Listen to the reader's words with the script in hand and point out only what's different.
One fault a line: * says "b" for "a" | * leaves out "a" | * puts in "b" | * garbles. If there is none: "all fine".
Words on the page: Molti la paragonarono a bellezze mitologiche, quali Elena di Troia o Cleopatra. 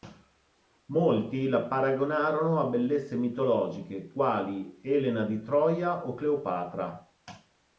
all fine